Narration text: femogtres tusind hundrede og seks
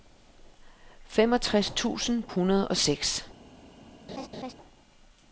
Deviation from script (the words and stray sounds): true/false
true